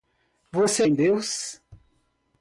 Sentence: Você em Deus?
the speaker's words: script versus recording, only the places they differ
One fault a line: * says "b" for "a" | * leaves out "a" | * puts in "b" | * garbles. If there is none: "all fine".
all fine